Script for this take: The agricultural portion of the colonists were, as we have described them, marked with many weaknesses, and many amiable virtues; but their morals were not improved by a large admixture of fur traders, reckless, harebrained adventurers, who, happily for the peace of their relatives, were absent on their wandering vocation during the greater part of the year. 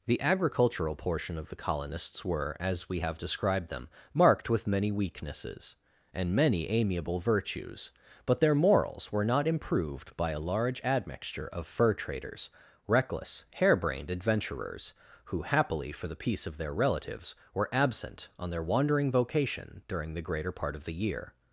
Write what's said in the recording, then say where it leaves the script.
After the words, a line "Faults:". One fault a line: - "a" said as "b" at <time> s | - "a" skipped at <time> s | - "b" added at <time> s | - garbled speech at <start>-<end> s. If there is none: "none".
The agricultural portion of the colonists were, as we have described them, marked with many weaknesses, and many amiable virtues; but their morals were not improved by a large admixture of fur traders, reckless, harebrained adventurers, who, happily for the peace of their relatives, were absent on their wandering vocation during the greater part of the year.
Faults:
none